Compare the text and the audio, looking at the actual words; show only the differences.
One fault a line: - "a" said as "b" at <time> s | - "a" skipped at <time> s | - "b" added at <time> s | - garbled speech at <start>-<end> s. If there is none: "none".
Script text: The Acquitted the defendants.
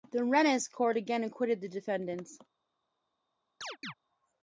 - "Rennes court again" added at 0.2 s